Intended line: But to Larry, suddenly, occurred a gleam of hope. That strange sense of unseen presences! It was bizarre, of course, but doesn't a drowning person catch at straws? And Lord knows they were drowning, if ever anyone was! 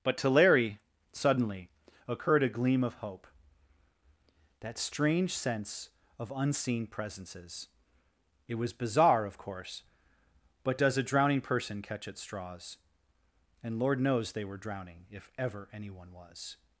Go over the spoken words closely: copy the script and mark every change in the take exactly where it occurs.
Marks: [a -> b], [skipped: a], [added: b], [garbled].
But to Larry, suddenly, occurred a gleam of hope. That strange sense of unseen presences! It was bizarre, of course, but [doesn't -> does] a drowning person catch at straws? And Lord knows they were drowning, if ever anyone was!